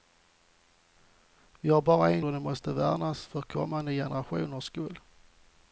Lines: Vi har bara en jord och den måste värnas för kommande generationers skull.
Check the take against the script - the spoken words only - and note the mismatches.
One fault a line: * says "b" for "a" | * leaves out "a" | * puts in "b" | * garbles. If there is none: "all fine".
* leaves out "jord"